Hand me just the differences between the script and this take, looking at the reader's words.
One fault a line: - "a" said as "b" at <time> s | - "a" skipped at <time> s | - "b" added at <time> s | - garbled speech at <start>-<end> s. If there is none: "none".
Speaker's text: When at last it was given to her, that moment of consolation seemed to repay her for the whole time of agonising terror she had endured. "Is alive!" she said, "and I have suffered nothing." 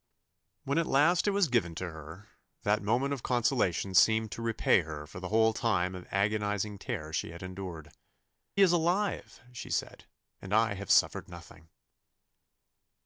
none